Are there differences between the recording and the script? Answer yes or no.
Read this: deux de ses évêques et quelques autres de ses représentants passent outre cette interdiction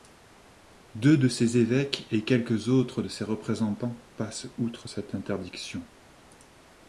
no